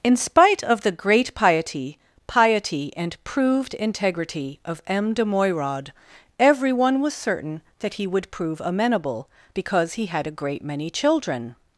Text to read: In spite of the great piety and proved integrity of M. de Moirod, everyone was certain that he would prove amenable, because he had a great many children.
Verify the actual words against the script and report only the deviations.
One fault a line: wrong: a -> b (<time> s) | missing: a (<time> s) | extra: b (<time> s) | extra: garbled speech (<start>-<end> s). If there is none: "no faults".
extra: piety (2.2 s)